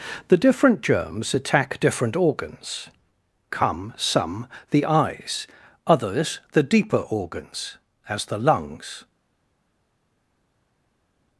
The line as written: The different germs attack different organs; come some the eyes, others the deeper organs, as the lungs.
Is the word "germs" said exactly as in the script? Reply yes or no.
yes